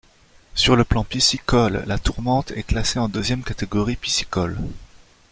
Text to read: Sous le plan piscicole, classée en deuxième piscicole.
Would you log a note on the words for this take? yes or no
yes